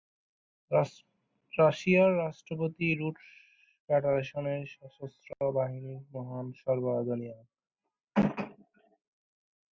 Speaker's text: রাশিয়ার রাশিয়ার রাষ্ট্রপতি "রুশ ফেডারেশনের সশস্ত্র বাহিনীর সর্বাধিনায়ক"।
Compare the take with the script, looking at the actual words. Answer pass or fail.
fail